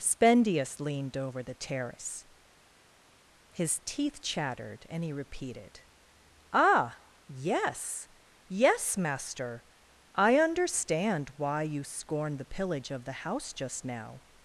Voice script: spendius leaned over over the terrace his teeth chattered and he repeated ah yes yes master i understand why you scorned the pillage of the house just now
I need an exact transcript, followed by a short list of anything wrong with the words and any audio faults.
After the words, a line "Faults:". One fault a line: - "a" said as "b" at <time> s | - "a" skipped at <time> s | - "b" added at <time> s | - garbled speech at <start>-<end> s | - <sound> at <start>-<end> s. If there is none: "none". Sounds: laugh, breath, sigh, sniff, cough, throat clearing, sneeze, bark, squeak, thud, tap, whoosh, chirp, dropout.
spendius leaned over the terrace his teeth chattered and he repeated ah yes yes master i understand why you scorned the pillage of the house just now
Faults:
- "over" skipped at 1.4 s